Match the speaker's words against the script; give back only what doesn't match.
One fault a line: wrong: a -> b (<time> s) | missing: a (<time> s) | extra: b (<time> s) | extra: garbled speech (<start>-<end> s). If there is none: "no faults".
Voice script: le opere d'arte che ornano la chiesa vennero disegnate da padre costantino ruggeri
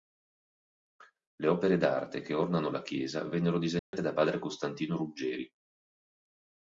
no faults